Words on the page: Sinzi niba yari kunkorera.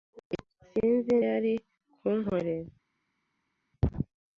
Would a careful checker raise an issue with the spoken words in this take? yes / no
yes